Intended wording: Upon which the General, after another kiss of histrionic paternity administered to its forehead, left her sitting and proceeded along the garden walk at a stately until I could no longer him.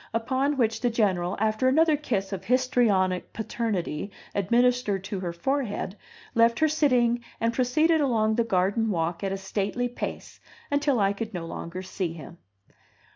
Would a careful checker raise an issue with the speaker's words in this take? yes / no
yes